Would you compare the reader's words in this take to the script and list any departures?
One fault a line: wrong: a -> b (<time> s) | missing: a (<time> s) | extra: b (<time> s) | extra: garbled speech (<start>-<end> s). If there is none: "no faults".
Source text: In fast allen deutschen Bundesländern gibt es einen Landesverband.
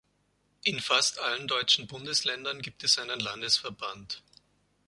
no faults